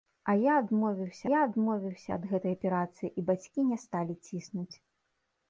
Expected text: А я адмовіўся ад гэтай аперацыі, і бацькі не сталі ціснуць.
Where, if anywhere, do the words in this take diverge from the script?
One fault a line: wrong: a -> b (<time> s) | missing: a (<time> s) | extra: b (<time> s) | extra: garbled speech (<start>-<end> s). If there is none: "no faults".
extra: я адмовіўся (1.3 s)